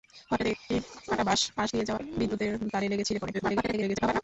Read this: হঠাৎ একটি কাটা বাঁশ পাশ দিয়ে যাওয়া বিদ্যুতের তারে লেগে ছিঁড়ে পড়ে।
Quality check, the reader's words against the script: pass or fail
fail